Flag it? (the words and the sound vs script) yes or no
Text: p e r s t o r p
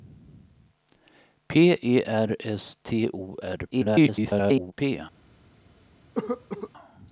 yes